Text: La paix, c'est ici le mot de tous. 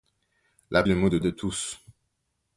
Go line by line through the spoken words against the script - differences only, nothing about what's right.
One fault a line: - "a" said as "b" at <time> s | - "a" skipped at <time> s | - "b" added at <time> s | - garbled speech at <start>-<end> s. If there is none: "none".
- "paix c'est ici" skipped at 0.8 s
- "de" added at 1.2 s